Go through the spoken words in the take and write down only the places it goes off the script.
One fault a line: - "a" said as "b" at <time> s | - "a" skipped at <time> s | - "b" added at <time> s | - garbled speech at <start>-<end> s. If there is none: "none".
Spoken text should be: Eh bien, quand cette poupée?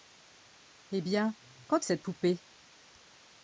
none